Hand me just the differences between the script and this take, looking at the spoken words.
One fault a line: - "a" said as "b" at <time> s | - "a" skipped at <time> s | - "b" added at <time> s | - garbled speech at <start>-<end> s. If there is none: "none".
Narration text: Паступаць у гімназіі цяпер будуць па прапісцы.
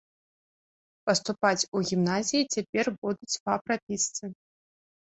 none